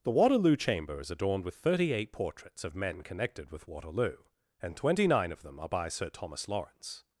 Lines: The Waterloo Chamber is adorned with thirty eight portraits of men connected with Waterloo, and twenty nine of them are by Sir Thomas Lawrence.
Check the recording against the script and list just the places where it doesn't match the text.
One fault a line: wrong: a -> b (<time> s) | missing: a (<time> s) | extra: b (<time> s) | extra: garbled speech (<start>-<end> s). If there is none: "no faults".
no faults